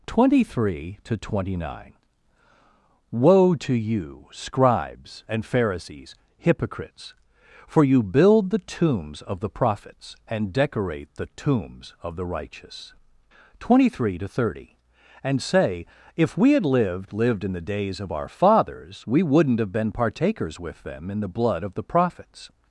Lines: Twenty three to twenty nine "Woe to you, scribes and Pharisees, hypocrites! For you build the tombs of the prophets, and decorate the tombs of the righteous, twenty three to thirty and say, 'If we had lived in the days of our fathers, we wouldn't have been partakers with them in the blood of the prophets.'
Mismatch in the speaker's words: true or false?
true